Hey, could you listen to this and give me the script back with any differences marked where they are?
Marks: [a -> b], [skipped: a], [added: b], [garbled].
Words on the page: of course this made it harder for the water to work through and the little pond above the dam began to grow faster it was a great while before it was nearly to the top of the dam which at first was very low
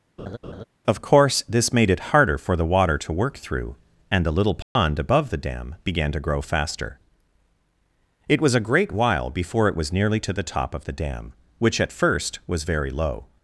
of course this made it harder for the water to work through and the little pond above the dam began to grow faster it was a great while before it was nearly to the top of the dam which at first was very low